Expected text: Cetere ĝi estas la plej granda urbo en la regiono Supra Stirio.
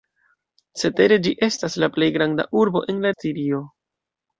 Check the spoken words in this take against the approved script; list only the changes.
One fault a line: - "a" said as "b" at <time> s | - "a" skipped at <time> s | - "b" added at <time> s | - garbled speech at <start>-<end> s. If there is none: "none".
- "regiono Supra" skipped at 3.1 s